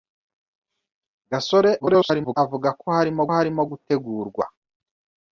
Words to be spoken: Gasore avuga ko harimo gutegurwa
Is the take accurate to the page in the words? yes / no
no